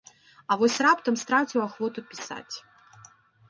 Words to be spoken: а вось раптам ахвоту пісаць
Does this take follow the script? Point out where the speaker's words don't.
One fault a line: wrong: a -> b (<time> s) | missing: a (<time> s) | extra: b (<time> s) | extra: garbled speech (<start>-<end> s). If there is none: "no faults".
extra: страціў (1.2 s)